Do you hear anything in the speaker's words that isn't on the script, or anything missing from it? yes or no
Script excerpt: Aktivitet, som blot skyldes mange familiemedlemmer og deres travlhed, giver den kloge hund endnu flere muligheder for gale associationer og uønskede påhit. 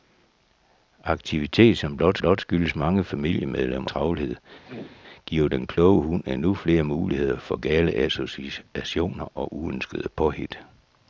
yes